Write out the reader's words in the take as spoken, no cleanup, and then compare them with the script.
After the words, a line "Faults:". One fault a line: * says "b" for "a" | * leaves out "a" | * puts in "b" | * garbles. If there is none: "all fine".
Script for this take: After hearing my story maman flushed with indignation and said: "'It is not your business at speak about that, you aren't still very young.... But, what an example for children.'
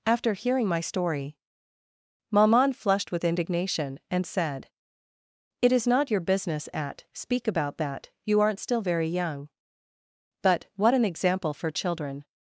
After hearing my story maman flushed with indignation and said: "'It is not your business at speak about that, you aren't still very young.... But, what an example for children.'
Faults:
all fine